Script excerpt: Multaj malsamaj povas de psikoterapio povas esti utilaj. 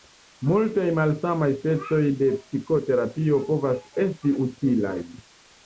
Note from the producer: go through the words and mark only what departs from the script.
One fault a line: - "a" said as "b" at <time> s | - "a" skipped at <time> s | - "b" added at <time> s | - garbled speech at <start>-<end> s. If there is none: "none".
- "povas" said as "specoj" at 1.5 s